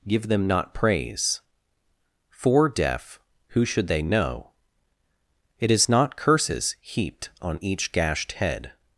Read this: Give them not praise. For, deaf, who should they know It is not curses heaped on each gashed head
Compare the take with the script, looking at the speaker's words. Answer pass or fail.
pass